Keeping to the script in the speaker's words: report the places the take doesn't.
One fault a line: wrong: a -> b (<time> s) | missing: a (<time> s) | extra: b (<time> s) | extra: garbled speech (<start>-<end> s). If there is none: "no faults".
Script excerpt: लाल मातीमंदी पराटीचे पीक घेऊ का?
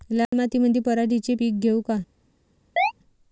no faults